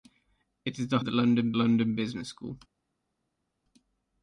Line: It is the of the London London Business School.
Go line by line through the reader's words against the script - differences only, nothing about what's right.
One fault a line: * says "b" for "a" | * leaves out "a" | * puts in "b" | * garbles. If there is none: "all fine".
all fine